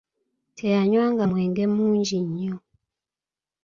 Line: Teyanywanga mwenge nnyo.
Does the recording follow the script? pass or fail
fail